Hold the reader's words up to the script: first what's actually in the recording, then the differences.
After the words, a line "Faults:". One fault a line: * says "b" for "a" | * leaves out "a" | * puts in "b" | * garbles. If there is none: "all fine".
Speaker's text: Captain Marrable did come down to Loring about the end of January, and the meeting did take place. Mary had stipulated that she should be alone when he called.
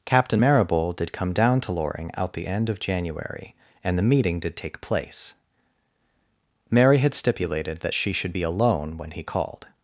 Captain Marrable did come down to Loring out the end of January, and the meeting did take place. Mary had stipulated that she should be alone when he called.
Faults:
* says "out" for "about"